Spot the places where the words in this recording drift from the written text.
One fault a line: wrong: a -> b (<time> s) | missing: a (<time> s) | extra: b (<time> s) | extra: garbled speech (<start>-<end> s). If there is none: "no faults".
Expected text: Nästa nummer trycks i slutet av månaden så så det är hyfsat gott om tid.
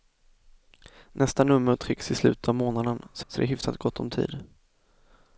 no faults